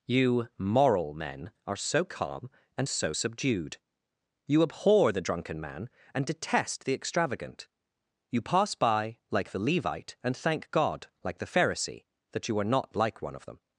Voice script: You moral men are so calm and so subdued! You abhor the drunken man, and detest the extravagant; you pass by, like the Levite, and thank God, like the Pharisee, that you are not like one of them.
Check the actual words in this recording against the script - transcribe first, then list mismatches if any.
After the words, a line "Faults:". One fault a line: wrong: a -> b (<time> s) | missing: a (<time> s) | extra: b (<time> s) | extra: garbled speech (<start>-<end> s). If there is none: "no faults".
You moral men are so calm and so subdued! You abhor the drunken man, and detest the extravagant; you pass by, like the Levite, and thank God, like the Pharisee, that you are not like one of them.
Faults:
no faults